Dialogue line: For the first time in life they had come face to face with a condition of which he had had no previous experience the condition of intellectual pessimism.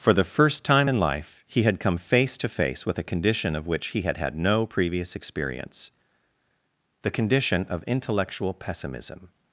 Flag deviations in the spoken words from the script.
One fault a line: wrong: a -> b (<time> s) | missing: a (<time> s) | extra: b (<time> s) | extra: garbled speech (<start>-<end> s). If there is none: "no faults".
wrong: they -> he (1.4 s)